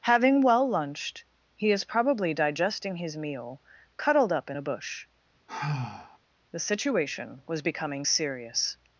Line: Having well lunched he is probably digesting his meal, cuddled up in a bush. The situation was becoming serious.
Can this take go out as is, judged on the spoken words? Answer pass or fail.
pass